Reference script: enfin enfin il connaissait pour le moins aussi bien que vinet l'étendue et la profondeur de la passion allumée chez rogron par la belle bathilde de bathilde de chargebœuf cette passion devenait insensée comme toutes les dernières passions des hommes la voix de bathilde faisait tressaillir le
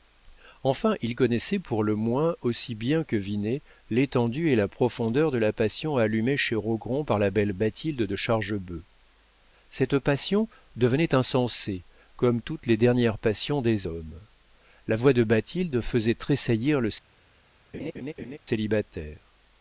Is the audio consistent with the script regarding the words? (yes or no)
no